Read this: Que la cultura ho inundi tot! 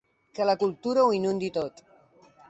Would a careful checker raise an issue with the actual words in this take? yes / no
no